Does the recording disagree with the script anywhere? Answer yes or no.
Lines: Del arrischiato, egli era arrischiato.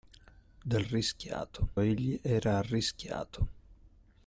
no